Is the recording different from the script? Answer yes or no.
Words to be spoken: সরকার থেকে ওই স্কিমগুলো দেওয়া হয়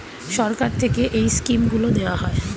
yes